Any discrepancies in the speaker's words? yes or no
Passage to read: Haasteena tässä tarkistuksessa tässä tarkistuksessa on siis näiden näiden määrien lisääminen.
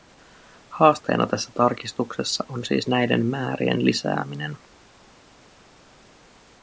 yes